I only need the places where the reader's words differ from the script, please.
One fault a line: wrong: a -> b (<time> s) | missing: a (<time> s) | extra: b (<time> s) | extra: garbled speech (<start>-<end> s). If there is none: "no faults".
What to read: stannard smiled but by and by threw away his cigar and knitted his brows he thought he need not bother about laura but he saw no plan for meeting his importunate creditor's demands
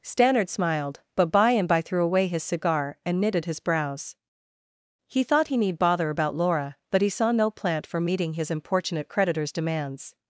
missing: not (5.8 s)
wrong: plan -> plant (7.5 s)